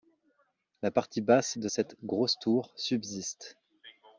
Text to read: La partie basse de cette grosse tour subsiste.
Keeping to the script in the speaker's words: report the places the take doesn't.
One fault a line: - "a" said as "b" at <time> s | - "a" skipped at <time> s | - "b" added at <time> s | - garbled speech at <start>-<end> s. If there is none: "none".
none